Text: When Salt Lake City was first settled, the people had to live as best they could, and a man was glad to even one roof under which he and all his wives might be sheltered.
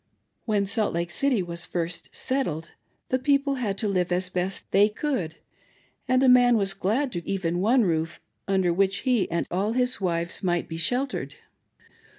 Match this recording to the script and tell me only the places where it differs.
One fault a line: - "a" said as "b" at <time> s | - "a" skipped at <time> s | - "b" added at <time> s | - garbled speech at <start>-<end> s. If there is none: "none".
none